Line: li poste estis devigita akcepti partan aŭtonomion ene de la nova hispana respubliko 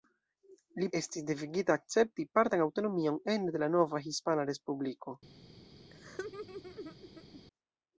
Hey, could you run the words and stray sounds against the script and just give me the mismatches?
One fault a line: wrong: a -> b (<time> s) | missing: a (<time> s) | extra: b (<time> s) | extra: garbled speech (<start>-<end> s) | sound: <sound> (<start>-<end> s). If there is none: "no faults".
missing: poste (0.8 s)
sound: laugh (5.9-7.4 s)